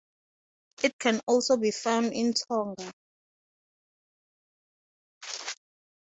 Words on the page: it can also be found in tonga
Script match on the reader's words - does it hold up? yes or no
yes